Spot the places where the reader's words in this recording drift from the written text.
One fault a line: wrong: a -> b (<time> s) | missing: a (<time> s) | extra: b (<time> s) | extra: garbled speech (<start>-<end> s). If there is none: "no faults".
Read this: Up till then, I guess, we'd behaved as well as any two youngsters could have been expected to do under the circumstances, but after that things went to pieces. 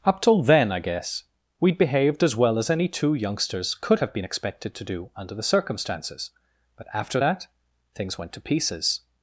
no faults